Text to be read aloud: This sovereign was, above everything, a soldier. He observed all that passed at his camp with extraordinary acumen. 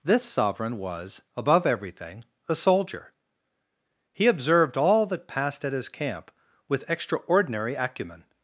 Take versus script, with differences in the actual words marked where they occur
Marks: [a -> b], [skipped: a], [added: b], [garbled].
This sovereign was, above everything, a soldier. He observed all that passed at his camp with extraordinary acumen.